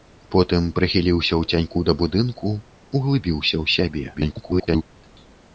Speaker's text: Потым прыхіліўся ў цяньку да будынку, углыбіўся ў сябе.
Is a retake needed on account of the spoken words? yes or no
yes